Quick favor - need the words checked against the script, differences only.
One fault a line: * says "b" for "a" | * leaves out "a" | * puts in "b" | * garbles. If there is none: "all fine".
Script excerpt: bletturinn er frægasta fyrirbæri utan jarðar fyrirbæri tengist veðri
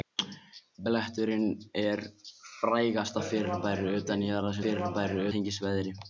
all fine